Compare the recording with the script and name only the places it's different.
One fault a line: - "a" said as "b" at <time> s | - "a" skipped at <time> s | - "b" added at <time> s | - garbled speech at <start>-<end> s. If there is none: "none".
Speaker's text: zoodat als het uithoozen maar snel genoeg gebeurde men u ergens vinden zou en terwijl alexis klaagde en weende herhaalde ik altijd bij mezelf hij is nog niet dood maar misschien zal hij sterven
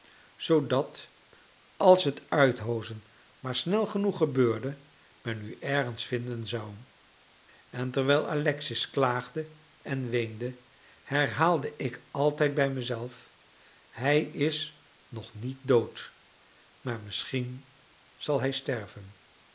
none